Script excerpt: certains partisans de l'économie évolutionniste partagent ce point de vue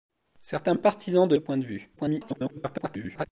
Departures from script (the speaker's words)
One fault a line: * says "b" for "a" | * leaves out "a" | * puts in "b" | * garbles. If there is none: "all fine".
* leaves out "l'économie évolutionniste partagent"
* garbles